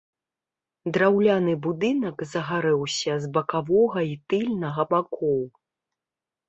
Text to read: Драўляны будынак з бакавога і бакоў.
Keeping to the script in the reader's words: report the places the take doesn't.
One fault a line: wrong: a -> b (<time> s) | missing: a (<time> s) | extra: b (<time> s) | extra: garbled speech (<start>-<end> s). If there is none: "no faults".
extra: загарэўся (2.3 s)
extra: тыльнага (4.3 s)